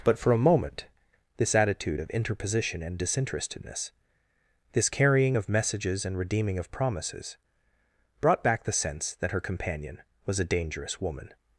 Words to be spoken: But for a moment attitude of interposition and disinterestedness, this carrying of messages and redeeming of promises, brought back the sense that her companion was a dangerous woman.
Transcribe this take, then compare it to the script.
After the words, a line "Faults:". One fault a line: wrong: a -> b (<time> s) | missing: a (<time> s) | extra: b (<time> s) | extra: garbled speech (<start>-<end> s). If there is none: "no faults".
But for a moment this attitude of interposition and disinterestedness, this carrying of messages and redeeming of promises, brought back the sense that her companion was a dangerous woman.
Faults:
extra: this (1.4 s)